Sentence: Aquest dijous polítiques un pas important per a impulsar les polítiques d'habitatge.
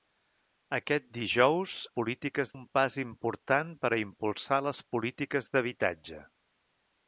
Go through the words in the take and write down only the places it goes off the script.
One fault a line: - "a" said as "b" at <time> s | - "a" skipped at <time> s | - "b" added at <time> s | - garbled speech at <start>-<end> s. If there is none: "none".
none